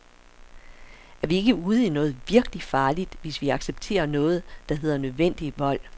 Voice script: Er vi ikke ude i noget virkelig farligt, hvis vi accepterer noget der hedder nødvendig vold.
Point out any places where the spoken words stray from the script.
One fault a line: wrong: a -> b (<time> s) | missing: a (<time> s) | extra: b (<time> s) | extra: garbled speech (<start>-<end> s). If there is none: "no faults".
no faults